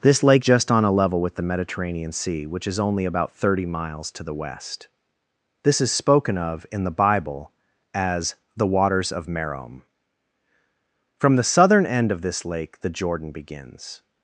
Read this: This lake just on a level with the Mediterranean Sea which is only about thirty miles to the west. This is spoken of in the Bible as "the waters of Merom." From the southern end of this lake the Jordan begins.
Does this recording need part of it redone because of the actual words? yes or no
no